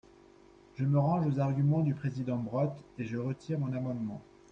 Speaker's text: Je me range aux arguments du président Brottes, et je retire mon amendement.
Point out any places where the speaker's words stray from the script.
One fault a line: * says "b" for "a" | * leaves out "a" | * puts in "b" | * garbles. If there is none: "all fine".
all fine